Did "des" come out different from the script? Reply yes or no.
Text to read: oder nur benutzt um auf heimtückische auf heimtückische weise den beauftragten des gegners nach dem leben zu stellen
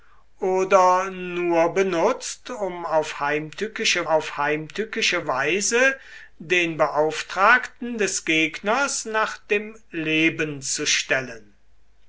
no